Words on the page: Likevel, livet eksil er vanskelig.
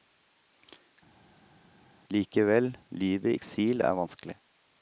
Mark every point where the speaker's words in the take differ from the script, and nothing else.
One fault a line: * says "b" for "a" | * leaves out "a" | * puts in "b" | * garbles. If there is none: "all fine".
all fine